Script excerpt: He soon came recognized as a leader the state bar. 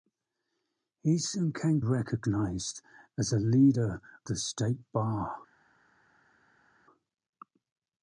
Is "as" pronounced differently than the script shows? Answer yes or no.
no